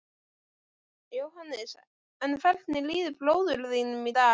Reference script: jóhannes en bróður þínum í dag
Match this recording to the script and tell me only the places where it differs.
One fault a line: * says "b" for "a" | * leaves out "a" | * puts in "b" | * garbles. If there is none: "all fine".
* puts in "hvernig líður"